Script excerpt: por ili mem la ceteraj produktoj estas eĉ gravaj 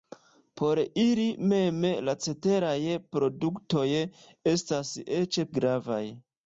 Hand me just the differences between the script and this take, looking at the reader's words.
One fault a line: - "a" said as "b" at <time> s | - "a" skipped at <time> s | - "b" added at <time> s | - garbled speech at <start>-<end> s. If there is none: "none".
none